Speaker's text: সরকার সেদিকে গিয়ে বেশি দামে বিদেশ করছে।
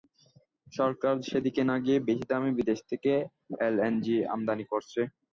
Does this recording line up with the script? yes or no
no